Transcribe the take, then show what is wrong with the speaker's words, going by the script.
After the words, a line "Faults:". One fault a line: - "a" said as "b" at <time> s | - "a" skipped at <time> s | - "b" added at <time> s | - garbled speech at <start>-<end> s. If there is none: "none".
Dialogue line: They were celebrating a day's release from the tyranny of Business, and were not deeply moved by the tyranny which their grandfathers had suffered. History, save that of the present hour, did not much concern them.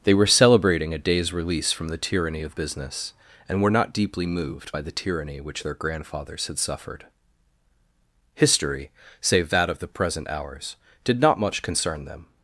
They were celebrating a day's release from the tyranny of Business, and were not deeply moved by the tyranny which their grandfathers had suffered. History, save that of the present hours, did not much concern them.
Faults:
- "hour" said as "hours" at 10.3 s